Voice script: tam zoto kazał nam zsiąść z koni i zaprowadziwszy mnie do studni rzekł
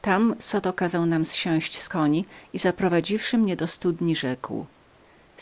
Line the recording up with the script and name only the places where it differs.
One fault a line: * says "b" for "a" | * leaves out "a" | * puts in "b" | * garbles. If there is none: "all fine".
all fine